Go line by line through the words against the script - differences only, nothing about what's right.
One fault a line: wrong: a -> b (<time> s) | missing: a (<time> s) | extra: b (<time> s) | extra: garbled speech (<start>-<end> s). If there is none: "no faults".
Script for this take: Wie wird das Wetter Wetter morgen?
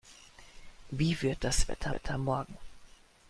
no faults